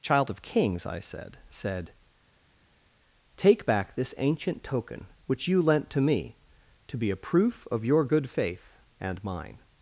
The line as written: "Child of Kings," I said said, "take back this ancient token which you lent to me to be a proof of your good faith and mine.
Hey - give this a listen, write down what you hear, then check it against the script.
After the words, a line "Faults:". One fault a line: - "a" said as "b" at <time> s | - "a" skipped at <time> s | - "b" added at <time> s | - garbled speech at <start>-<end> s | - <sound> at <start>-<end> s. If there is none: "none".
"Child of Kings," I said said, "take back this ancient token which you lent to me to be a proof of your good faith and mine.
Faults:
none